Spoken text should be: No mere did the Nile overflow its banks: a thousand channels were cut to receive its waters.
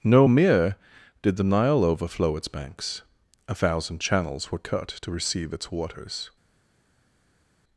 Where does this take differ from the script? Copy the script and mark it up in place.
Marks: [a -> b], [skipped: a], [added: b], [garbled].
No mere did the Nile overflow its banks: a thousand channels were cut to receive its waters.